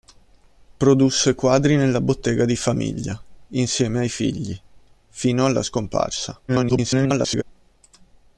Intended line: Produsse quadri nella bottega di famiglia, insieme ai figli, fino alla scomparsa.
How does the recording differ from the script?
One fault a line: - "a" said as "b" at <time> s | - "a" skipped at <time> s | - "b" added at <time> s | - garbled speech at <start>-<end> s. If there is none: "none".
- garbled speech at 6.5-7.4 s